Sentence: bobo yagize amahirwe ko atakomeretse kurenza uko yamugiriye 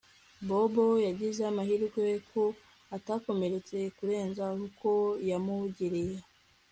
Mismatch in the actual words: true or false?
false